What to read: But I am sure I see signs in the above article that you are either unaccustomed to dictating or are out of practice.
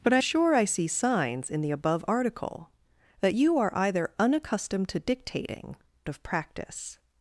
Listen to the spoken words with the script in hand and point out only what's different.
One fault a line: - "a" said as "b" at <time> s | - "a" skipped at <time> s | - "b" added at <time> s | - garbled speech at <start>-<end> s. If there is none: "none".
- "am" skipped at 0.2 s
- "or are out" skipped at 5.8 s